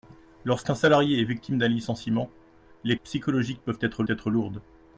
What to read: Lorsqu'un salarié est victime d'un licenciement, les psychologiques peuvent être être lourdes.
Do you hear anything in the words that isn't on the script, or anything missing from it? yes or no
no